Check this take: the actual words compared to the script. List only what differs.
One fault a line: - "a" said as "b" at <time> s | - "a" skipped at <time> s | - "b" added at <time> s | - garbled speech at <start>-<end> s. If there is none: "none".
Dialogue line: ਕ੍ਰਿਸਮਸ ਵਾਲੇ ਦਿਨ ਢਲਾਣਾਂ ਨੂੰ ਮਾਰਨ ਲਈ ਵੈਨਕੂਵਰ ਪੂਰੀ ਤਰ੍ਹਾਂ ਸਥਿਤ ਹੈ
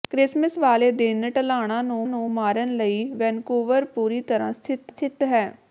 - "ਨੂੰ" added at 2.1 s
- "ਸਥਿਤ" added at 4.9 s